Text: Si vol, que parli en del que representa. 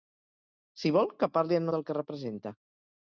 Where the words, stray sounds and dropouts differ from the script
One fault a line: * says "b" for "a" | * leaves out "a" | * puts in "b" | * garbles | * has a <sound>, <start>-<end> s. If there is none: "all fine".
all fine